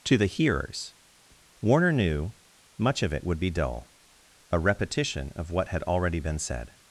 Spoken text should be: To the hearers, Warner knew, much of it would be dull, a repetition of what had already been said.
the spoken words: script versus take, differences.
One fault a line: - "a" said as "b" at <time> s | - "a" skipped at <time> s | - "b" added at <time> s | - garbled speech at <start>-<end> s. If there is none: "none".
none